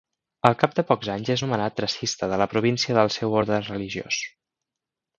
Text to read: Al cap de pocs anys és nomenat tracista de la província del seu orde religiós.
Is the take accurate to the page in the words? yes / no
yes